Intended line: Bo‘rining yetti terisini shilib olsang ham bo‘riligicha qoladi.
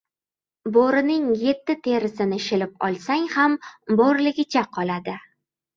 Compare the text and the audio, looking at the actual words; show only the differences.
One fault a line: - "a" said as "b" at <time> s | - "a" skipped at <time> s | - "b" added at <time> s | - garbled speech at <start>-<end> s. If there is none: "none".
none